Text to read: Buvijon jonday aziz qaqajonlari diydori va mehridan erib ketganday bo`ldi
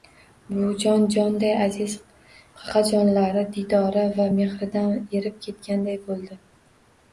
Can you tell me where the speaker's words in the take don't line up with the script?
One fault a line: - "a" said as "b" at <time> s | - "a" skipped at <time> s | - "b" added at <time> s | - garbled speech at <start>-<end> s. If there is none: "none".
none